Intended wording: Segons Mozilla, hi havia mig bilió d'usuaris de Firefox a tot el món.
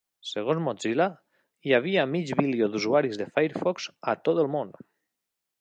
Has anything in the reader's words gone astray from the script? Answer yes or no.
no